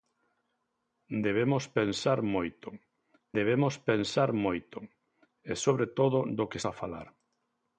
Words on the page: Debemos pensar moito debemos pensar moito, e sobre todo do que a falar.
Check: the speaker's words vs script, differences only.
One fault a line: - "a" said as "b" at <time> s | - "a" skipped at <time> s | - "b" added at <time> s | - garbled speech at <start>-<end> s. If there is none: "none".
none